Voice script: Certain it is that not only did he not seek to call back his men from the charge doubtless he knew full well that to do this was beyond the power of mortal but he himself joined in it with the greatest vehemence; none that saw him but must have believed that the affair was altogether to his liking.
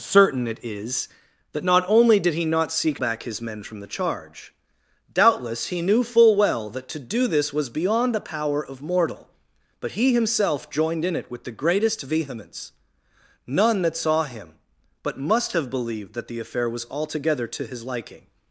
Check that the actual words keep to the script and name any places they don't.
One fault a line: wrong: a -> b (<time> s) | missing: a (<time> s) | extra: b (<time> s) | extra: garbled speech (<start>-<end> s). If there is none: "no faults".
missing: to call (3.0 s)